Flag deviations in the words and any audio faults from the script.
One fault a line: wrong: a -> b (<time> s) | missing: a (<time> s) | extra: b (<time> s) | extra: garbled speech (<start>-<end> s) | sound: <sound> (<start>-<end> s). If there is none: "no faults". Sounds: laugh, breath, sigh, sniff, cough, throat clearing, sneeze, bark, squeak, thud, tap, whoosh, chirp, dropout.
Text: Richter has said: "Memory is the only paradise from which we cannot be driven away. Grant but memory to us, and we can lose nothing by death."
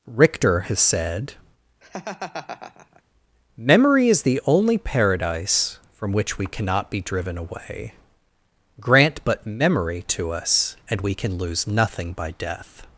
sound: laugh (1.8-3.0 s)